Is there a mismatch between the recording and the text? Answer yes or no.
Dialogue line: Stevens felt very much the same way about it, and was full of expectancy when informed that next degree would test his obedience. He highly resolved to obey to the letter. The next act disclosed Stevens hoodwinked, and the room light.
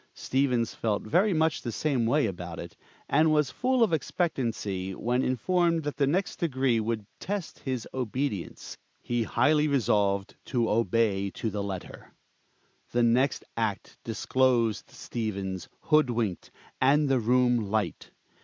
yes